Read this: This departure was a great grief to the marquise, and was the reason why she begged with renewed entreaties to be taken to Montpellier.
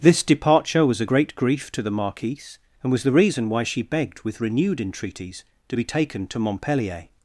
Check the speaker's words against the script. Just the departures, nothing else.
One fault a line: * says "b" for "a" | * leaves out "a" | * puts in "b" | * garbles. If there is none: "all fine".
all fine